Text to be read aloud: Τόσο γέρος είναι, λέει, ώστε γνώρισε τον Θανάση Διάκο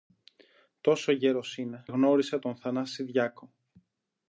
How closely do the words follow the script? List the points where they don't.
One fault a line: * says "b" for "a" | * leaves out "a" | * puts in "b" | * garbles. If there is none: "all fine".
* leaves out "λέει ώστε"